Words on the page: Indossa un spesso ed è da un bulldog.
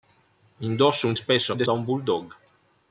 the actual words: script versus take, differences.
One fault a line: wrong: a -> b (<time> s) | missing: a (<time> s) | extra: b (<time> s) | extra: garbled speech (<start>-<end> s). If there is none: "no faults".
no faults